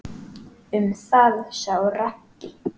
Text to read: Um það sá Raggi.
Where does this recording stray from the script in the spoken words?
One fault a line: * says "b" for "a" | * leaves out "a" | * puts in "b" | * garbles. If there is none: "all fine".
all fine